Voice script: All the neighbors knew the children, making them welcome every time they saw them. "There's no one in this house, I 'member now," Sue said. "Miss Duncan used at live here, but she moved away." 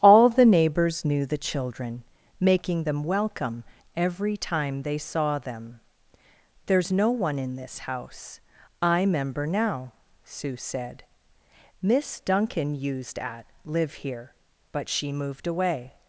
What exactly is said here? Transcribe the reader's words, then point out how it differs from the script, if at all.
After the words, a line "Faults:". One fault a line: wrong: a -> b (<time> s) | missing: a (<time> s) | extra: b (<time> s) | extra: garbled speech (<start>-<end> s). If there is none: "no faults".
All the neighbors knew the children, making them welcome every time they saw them. "There's no one in this house, I 'member now," Sue said. "Miss Duncan used at live here, but she moved away."
Faults:
no faults